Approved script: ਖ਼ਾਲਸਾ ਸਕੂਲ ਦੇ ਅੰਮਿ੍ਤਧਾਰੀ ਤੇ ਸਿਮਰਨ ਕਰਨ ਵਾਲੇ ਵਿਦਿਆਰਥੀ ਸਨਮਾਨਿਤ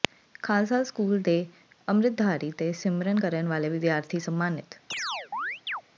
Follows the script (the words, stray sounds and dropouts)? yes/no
no